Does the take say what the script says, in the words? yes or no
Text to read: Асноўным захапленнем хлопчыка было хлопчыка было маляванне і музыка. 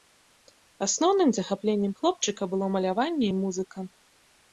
no